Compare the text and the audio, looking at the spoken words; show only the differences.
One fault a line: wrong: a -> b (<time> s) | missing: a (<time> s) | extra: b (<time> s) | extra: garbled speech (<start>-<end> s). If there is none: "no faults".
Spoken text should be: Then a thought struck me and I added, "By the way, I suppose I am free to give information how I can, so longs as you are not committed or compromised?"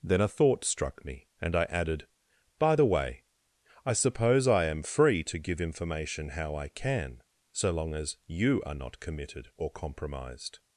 wrong: longs -> long (7.7 s)